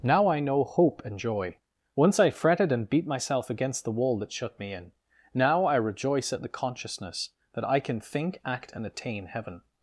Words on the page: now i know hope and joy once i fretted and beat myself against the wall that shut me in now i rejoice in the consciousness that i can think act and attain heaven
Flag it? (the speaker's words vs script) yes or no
yes